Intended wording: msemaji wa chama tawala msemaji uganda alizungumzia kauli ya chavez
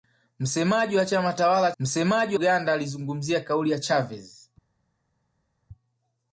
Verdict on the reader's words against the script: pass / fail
pass